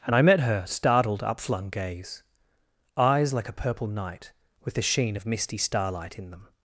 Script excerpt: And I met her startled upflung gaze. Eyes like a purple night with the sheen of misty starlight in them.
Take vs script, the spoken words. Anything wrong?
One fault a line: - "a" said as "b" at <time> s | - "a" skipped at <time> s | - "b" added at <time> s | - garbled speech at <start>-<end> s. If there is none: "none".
none